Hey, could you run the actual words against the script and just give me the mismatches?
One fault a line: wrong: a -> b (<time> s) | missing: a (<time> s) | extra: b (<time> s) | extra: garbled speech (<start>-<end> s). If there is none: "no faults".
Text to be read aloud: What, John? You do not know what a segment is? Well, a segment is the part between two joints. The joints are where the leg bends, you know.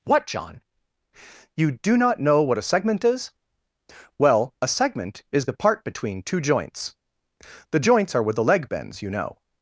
no faults